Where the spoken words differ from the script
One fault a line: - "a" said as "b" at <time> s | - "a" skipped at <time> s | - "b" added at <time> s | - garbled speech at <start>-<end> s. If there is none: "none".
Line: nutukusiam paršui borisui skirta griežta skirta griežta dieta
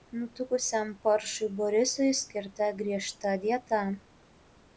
- "skirta griežta" skipped at 3.3 s